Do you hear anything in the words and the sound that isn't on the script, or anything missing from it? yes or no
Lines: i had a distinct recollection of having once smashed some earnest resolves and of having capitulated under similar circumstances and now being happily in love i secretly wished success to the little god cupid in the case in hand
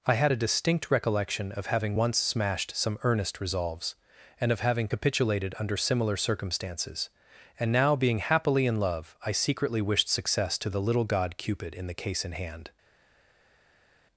no